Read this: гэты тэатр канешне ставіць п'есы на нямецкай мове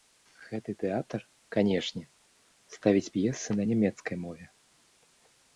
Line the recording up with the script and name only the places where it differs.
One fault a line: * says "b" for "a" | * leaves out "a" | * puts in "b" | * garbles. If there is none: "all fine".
all fine